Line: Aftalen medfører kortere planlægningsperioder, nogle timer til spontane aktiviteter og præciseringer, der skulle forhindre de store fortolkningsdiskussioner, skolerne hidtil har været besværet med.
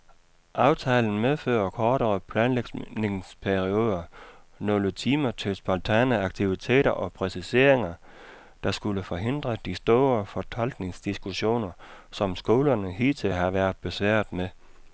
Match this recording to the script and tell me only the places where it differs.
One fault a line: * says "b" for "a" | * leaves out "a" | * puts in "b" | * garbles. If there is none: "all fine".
* puts in "som"